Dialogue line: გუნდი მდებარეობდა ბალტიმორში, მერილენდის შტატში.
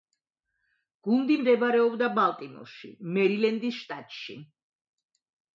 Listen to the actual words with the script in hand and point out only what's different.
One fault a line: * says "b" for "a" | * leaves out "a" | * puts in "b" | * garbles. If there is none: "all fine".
all fine